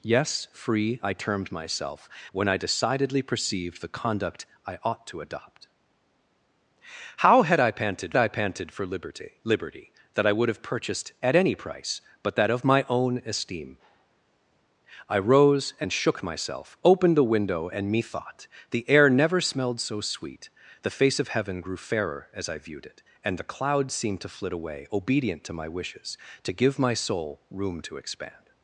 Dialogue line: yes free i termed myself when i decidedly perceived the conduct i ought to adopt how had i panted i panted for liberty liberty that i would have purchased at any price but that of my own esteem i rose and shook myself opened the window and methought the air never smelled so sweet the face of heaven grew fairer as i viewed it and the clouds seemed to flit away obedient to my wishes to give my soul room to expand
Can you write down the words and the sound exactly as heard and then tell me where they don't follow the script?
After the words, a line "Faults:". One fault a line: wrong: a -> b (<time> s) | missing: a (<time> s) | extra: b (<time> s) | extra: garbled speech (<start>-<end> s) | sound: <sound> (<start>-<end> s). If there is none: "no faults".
yes free i termed myself when i decidedly perceived the conduct i ought to adopt how had i panted i panted for liberty liberty that i would have purchased at any price but that of my own esteem i rose and shook myself opened the window and methought the air never smelled so sweet the face of heaven grew fairer as i viewed it and the clouds seemed to flit away obedient to my wishes to give my soul room to expand
Faults:
no faults